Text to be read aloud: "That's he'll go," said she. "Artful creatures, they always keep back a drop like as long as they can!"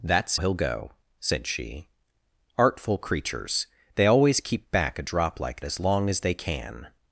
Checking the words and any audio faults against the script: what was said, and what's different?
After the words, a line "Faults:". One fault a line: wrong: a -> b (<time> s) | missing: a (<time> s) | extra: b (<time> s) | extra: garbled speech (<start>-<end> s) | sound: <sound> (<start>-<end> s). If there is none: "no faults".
"That's he'll go," said she. "Artful creatures, they always keep back a drop like as long as they can!"
Faults:
no faults